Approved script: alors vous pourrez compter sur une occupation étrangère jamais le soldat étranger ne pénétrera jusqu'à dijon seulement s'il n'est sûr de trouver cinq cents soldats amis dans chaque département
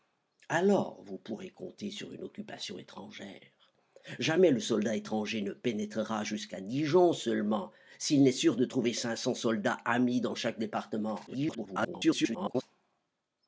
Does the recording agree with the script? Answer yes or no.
no